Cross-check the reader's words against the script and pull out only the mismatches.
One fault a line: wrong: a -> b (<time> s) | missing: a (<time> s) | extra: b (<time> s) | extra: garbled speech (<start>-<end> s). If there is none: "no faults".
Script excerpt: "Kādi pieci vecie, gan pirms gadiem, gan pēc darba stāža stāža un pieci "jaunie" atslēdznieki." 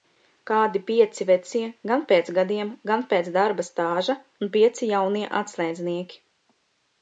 wrong: pirms -> pēc (2.1 s)
missing: stāža (4.2 s)